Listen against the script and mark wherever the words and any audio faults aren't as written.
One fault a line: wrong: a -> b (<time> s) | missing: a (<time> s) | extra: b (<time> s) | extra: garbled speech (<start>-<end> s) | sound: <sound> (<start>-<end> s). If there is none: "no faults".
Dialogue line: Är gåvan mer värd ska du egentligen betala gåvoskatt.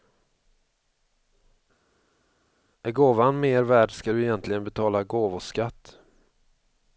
no faults